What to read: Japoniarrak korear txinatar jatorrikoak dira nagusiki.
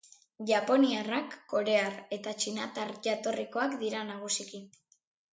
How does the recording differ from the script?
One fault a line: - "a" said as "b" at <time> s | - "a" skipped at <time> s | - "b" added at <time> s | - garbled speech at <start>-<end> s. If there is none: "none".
- "eta" added at 2.2 s